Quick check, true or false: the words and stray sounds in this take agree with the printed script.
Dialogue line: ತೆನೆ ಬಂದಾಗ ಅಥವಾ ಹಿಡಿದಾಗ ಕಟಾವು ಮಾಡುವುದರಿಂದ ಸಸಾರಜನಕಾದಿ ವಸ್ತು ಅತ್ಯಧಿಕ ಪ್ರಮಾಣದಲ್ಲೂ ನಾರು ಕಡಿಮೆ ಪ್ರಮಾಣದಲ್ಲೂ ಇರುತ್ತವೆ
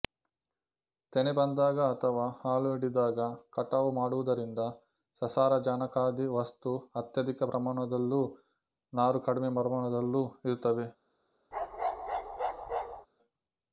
false